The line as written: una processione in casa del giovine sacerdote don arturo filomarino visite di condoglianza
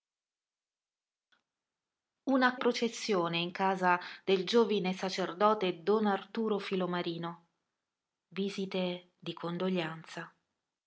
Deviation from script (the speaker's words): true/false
false